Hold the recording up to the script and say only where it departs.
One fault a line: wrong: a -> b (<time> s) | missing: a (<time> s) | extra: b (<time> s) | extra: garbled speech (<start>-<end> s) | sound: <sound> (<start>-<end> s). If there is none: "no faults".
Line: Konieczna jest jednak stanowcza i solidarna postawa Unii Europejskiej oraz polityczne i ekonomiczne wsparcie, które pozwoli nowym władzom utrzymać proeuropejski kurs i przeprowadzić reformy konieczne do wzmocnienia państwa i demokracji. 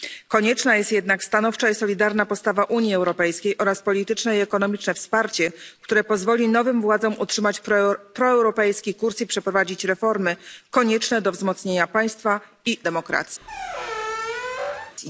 sound: squeak (13.4-15.0 s)